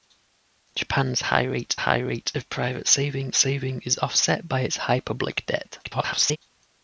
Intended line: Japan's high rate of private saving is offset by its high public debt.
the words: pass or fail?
fail